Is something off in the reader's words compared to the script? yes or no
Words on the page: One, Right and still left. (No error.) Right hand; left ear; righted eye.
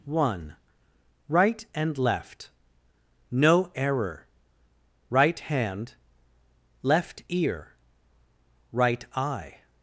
yes